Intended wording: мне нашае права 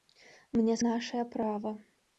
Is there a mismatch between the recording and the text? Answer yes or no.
no